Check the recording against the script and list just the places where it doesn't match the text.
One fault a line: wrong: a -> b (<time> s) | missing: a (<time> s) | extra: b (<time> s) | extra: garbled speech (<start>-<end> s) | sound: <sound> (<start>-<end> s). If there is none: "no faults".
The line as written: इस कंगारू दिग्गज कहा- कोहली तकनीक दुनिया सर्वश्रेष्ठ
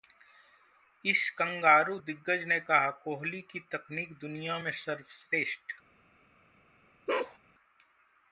extra: ने (2.4 s)
extra: की (3.4 s)
extra: में (4.6 s)
sound: bark (7.1-7.4 s)